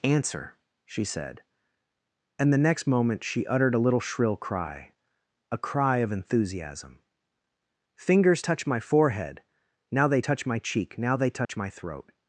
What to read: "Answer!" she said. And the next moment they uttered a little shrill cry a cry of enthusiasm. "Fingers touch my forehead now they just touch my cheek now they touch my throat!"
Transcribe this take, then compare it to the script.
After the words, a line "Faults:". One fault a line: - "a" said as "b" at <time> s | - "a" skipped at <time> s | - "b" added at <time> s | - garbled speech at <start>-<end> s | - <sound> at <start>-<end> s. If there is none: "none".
"Answer!" she said. And the next moment she uttered a little shrill cry a cry of enthusiasm. "Fingers touch my forehead now they touch my cheek now they touch my throat!"
Faults:
- "they" said as "she" at 3.2 s
- "just" skipped at 10.2 s
- dropout at 11.4-11.5 s